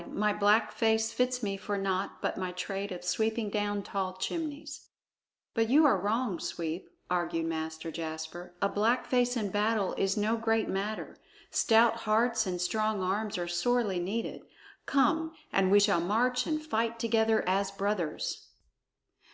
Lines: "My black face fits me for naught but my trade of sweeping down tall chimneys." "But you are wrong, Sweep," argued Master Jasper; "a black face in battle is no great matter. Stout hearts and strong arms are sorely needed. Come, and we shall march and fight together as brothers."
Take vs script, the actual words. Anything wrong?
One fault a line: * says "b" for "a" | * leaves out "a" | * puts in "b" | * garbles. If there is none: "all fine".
all fine